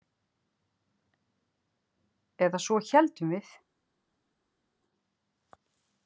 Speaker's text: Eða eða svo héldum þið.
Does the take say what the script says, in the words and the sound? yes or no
no